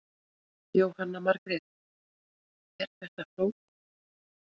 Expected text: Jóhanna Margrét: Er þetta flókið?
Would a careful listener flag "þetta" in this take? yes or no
no